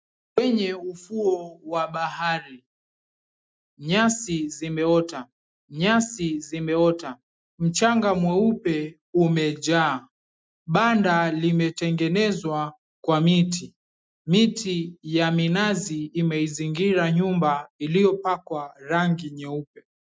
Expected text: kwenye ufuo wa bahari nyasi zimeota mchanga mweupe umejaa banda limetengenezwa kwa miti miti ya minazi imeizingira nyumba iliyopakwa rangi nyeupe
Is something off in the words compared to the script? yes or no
yes